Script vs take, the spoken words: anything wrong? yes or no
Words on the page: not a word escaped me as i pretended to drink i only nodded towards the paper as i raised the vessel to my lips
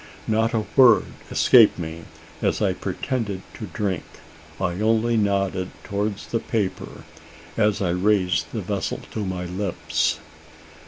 no